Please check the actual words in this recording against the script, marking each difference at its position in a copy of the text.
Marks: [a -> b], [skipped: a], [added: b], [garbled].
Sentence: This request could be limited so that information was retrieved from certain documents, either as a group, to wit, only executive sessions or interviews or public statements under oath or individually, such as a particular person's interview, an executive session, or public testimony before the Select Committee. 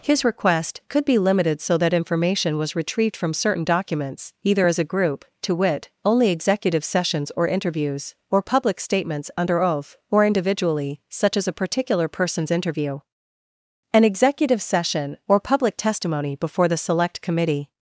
[This -> His] request could be limited so that information was retrieved from certain documents, either as a group, to wit, only executive sessions or interviews or public statements under oath or individually, such as a particular person's interview, an executive session, or public testimony before the Select Committee.